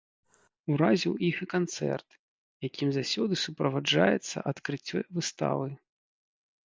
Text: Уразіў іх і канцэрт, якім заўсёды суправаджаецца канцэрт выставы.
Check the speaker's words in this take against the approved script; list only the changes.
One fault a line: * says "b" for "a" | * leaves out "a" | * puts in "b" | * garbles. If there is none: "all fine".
* says "адкрыццё" for "канцэрт"